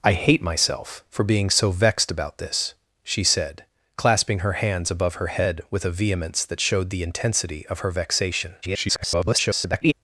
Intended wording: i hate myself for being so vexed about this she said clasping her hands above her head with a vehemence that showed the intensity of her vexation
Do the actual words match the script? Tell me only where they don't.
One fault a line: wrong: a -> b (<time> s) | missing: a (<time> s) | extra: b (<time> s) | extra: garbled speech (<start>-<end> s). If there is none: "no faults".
extra: garbled speech (8.6-9.9 s)